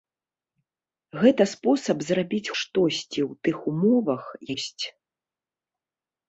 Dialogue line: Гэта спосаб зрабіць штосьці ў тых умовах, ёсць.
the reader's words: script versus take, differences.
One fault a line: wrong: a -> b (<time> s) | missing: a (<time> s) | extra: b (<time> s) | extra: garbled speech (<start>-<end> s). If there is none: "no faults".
no faults